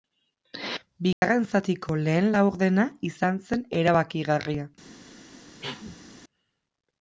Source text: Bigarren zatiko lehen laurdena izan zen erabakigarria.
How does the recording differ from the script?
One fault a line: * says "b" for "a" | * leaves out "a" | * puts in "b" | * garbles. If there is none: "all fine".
all fine